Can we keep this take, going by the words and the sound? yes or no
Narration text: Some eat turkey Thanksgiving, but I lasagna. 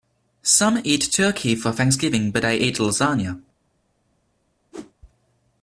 no